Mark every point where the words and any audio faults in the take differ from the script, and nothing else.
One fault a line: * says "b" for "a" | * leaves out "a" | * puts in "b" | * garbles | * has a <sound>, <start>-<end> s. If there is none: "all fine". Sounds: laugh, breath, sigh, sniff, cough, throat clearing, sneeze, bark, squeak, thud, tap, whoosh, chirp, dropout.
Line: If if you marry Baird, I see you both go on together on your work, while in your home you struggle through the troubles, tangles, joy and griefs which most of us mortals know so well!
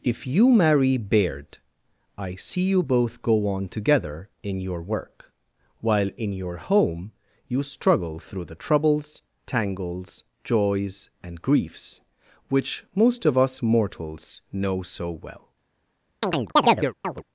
* leaves out "if"
* says "in" for "on"
* says "joys" for "joy"
* has a chirp, 16.2-17.2 s